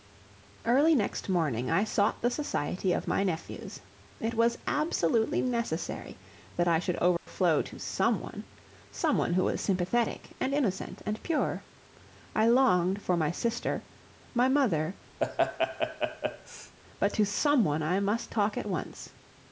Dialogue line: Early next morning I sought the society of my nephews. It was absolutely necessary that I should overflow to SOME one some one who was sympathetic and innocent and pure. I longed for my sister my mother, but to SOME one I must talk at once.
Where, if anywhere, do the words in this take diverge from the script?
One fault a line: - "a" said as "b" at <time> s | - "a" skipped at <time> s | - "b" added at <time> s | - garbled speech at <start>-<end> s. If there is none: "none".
none